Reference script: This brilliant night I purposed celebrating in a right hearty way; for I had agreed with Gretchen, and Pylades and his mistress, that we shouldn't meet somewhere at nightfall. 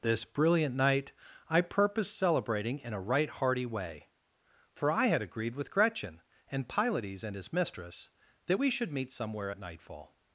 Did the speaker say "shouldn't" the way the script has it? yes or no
no